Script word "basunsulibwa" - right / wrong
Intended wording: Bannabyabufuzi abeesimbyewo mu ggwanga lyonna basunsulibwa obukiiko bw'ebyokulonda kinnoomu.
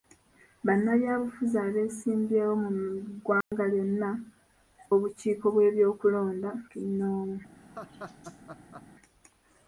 wrong